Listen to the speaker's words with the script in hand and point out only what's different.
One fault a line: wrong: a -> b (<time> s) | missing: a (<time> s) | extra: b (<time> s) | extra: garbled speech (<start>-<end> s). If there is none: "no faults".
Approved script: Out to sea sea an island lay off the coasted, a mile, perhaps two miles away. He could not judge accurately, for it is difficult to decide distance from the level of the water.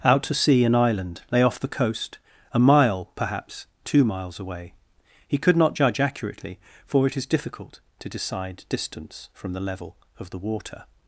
missing: sea (0.6 s)
wrong: coasted -> coast (1.7 s)